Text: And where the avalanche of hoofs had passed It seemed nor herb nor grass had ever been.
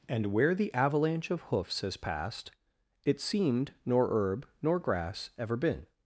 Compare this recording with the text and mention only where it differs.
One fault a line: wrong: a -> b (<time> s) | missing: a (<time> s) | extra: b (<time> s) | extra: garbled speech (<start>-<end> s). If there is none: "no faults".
wrong: had -> has (1.8 s)
missing: had (5.3 s)